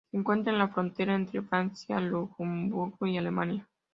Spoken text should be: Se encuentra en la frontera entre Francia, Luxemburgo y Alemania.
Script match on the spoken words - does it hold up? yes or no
yes